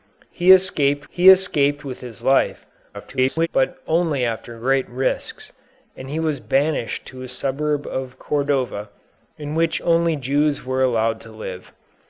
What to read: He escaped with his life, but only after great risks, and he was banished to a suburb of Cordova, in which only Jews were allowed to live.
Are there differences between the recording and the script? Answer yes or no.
yes